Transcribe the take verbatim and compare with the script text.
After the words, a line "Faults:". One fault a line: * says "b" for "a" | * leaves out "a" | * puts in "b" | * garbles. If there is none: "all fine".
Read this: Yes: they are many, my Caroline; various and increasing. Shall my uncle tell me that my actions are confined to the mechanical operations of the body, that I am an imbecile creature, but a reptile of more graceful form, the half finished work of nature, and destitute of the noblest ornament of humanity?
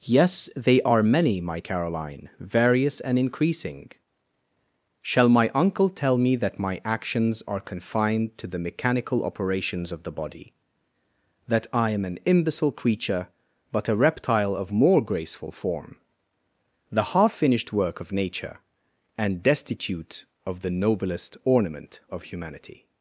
Yes: they are many, my Caroline; various and increasing. Shall my uncle tell me that my actions are confined to the mechanical operations of the body, that I am an imbecile creature, but a reptile of more graceful form, the half finished work of nature, and destitute of the noblest ornament of humanity?
Faults:
all fine